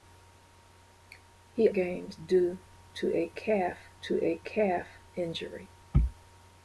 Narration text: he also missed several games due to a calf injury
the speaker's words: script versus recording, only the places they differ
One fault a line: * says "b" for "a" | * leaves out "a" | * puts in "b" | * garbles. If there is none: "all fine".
* says "games due to a calf" for "also missed several games due"